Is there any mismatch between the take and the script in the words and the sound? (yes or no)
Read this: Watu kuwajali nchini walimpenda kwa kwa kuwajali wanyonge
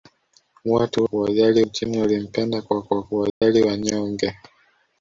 yes